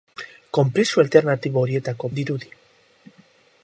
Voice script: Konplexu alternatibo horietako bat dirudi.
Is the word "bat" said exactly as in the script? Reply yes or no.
no